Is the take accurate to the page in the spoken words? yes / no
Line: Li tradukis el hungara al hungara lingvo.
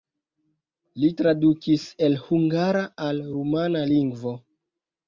no